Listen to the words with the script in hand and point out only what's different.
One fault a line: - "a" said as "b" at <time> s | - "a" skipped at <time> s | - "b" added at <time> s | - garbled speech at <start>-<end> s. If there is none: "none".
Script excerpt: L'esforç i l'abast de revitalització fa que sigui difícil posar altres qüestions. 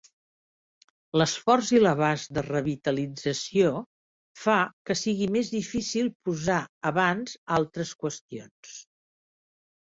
- "més" added at 5.4 s
- "abans" added at 6.9 s